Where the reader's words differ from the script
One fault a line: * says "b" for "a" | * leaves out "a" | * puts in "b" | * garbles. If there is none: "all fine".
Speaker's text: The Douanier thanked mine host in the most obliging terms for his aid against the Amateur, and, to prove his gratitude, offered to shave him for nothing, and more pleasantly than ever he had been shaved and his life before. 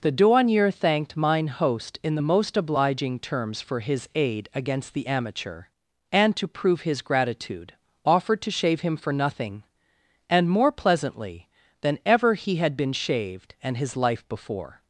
all fine